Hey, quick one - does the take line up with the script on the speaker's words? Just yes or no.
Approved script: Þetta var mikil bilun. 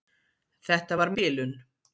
no